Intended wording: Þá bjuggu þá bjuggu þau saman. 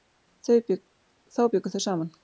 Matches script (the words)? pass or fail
fail